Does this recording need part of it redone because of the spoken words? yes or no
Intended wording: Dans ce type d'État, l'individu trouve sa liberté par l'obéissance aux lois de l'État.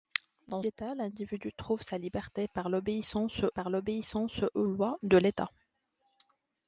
yes